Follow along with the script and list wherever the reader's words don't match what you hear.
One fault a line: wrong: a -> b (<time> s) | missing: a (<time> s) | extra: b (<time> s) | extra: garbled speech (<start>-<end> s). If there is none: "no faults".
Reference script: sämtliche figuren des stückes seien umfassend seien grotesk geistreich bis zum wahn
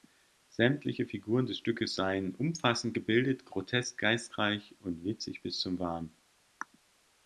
wrong: seien -> gebildet (2.9 s)
extra: und witzig (4.8 s)